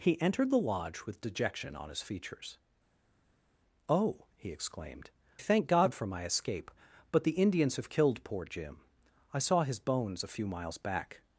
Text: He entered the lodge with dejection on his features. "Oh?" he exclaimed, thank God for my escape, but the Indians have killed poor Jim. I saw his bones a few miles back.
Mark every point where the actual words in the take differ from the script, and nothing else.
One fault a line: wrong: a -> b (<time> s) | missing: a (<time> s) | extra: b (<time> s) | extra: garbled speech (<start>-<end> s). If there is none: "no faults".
no faults